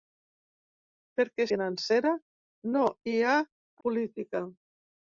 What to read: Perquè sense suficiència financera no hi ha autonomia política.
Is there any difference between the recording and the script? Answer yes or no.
yes